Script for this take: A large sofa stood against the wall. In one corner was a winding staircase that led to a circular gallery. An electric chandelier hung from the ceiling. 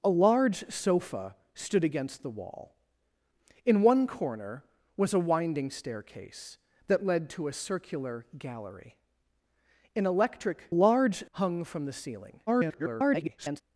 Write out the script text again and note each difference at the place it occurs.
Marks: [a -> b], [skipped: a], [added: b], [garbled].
A large sofa stood against the wall. In one corner was a winding staircase that led to a circular gallery. An electric [chandelier -> large] hung from the ceiling. [garbled]